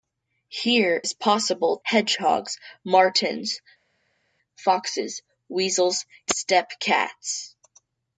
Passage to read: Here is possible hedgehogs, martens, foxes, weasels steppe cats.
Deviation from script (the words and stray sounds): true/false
false